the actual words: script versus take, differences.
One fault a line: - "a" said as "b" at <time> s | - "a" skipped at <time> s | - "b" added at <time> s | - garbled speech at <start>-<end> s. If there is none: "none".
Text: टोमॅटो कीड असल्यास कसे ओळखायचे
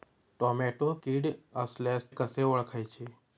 none